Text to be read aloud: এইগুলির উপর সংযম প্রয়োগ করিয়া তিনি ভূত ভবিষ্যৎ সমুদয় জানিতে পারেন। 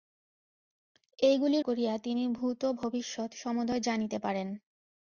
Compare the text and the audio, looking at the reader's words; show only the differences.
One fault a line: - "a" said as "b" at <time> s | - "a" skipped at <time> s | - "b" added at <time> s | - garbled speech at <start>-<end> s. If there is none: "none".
- "উপর সংযম প্রয়োগ" skipped at 1.6 s